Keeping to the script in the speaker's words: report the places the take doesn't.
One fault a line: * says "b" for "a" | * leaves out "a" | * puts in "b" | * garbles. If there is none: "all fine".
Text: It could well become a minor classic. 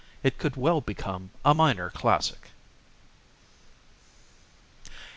all fine